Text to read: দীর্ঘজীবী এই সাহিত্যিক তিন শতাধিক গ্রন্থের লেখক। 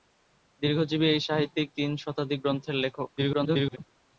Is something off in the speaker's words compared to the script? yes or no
yes